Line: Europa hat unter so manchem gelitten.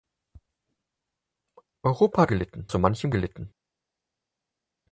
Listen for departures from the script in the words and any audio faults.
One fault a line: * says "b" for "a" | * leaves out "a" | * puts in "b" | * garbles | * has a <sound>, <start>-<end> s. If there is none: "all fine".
* says "gelitten" for "unter"